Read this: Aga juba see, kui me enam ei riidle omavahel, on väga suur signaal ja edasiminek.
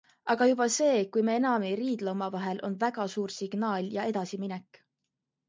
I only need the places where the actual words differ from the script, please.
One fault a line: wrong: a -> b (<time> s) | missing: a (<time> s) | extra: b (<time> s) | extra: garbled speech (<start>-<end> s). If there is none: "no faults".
no faults